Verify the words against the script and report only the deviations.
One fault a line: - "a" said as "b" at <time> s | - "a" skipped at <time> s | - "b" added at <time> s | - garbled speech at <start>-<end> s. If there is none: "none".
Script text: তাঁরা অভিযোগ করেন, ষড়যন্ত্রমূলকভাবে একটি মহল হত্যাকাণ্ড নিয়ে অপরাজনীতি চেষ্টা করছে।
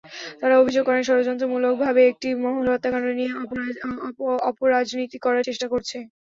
- "করার" added at 5.3 s